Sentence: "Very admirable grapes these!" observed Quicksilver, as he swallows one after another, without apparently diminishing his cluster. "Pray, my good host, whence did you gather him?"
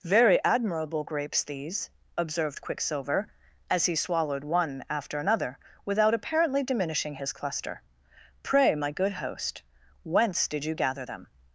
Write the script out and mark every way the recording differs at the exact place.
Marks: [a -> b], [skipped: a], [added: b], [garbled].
"Very admirable grapes these!" observed Quicksilver, as he [swallows -> swallowed] one after another, without apparently diminishing his cluster. "Pray, my good host, whence did you gather [him?" -> them]